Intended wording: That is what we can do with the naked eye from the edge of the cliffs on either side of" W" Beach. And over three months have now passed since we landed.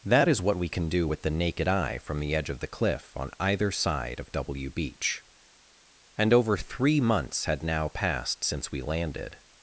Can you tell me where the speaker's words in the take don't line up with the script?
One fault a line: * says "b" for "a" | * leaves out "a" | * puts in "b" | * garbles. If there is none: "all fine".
* says "cliff" for "cliffs"
* says "had" for "have"